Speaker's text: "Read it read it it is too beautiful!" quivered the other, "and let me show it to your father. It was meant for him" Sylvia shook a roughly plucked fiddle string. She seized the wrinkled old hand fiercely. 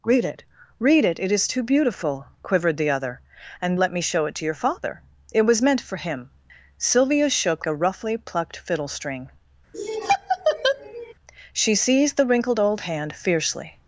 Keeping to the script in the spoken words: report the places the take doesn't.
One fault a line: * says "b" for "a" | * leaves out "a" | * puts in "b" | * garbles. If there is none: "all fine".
all fine